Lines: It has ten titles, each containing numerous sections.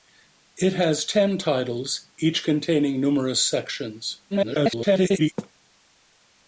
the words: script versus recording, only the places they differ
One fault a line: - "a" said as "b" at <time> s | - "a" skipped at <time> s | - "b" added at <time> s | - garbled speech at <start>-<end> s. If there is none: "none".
- garbled speech at 4.3-5.3 s